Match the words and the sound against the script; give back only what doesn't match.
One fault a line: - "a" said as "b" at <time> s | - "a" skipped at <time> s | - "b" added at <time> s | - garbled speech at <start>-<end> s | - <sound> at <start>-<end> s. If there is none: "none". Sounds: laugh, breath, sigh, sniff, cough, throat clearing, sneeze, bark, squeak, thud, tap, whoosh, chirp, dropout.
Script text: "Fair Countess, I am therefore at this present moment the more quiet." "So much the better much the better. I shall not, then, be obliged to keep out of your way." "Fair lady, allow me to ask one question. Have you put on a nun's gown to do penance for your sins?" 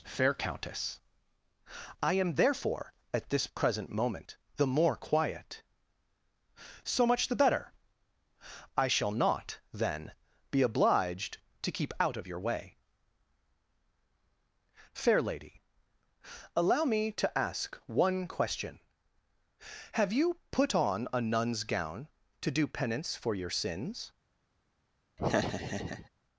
- "much the better" skipped at 7.7 s
- laugh at 25.2-26.1 s